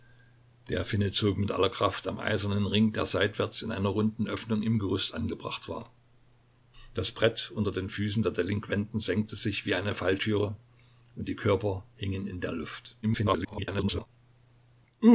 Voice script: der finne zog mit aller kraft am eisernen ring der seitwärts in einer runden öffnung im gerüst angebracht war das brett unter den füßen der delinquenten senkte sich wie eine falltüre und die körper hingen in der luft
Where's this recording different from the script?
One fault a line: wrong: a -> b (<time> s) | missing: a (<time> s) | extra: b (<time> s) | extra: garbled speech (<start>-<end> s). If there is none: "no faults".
extra: garbled speech (13.0-14.1 s)